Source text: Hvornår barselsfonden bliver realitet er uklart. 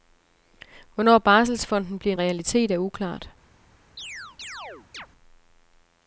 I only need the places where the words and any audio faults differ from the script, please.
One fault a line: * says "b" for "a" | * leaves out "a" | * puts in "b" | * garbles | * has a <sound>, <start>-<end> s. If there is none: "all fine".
* has a chirp, 4.0-5.1 s